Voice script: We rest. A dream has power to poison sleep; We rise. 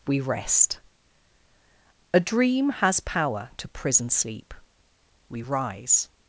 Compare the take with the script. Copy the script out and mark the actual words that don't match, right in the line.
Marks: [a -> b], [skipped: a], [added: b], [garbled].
We rest. A dream has power to [poison -> prison] sleep; We rise.